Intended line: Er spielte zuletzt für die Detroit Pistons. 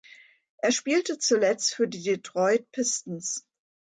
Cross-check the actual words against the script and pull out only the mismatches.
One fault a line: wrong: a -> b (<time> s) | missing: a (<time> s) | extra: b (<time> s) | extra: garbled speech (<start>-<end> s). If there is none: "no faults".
no faults